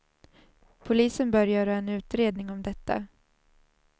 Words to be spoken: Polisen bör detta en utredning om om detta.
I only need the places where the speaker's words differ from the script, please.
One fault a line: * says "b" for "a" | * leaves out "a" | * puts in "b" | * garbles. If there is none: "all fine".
* says "göra" for "detta"
* leaves out "om"